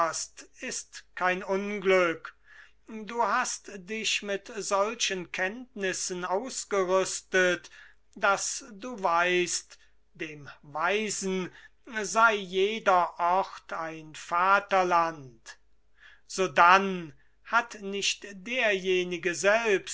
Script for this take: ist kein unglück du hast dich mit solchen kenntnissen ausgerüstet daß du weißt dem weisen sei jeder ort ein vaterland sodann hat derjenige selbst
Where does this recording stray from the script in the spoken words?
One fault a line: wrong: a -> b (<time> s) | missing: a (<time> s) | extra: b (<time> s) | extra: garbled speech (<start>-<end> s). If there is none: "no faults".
extra: nicht (17.8 s)